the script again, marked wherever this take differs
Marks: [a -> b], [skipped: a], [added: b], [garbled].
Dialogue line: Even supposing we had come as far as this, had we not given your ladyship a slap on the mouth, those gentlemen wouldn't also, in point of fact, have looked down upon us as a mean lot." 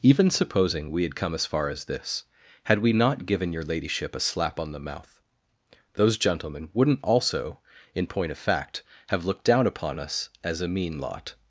Even supposing we had come as far as this, had we not given your ladyship a slap on the mouth, those gentlemen wouldn't also, in point of fact, have looked down upon us as a mean lot."